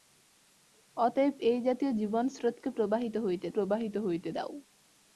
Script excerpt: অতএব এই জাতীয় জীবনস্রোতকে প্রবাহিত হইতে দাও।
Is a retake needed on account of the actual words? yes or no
yes